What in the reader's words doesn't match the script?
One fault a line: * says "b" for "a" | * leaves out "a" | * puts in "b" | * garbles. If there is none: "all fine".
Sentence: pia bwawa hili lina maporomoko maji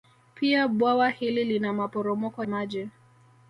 all fine